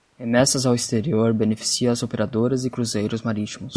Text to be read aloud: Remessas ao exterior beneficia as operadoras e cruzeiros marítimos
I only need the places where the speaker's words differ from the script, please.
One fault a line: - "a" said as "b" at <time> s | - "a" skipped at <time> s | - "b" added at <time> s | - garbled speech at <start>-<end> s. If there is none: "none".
none